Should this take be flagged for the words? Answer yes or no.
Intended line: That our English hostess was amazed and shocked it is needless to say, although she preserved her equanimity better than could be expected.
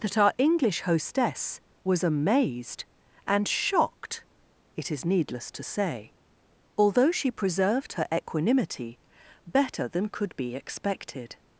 no